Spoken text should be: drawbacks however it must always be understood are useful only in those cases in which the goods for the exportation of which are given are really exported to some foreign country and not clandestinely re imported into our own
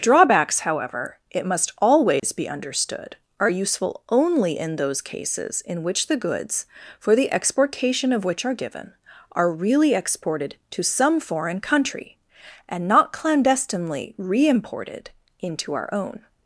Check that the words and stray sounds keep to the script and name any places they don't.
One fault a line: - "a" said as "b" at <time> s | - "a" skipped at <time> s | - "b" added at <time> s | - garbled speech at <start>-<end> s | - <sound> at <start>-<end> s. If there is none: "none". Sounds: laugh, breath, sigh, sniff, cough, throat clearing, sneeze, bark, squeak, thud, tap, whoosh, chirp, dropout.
- dropout at 2.2-2.2 s